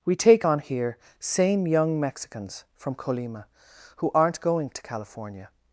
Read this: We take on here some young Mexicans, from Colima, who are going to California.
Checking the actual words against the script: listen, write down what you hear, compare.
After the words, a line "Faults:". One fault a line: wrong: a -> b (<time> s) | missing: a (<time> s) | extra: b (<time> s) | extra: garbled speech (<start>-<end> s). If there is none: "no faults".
We take on here same young Mexicans, from Colima, who aren't going to California.
Faults:
wrong: some -> same (1.2 s)
wrong: are -> aren't (4.1 s)